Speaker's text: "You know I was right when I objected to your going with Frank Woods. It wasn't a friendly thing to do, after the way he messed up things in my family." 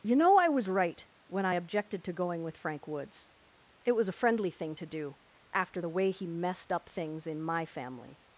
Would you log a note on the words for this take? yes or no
yes